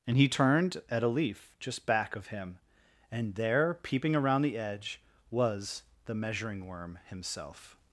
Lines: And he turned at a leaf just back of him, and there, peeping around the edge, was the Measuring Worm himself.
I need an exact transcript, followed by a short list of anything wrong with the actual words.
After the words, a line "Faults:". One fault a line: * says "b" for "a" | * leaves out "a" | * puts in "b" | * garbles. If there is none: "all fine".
And he turned at a leaf just back of him, and there, peeping around the edge, was the Measuring Worm himself.
Faults:
all fine